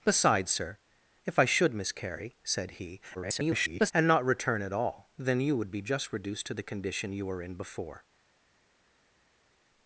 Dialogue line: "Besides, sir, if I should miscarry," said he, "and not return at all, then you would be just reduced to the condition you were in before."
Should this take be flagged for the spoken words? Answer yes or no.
yes